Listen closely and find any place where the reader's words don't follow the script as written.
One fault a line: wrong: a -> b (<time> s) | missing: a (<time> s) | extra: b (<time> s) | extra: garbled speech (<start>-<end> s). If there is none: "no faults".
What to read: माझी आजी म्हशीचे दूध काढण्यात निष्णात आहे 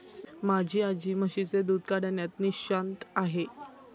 no faults